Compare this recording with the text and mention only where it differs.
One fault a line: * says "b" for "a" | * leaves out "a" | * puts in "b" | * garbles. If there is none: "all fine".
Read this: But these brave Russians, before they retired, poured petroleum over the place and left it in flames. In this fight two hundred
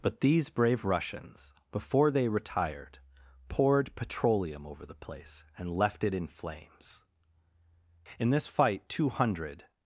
all fine